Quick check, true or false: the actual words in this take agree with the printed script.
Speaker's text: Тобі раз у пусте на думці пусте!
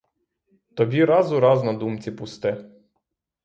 false